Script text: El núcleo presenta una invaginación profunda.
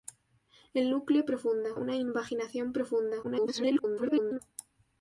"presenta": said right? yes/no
no